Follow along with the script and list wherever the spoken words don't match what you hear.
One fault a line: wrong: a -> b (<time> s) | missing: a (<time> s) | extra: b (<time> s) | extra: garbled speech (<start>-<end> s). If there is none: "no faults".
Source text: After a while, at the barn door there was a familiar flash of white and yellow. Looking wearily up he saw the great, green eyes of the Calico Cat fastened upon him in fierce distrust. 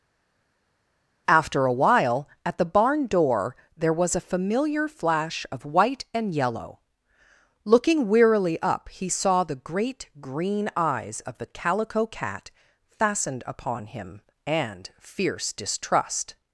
wrong: in -> and (14.5 s)